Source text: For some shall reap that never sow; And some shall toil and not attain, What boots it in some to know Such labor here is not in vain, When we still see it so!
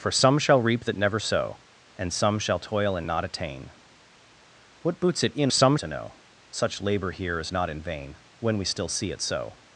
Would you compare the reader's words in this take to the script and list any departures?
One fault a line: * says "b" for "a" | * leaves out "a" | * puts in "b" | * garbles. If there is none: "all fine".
all fine